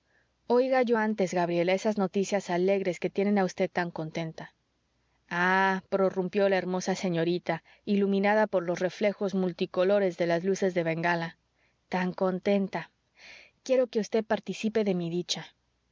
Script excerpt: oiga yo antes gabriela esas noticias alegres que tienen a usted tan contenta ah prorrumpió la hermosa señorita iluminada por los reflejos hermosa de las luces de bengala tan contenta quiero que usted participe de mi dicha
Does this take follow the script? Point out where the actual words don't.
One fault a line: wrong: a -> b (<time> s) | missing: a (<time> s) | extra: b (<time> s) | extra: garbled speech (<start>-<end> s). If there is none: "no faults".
wrong: hermosa -> multicolores (9.3 s)